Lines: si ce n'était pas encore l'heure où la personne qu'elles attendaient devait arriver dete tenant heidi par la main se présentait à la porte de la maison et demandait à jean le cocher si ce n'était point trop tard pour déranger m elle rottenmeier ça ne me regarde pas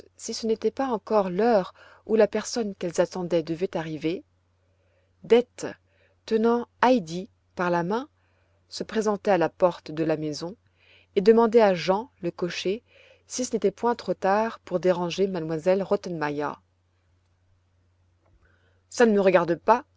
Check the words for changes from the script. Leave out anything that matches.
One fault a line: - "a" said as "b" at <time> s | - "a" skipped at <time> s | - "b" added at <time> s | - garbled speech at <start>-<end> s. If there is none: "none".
none